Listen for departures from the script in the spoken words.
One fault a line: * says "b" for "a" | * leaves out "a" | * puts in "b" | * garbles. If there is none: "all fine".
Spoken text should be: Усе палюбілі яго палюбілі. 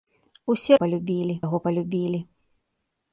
all fine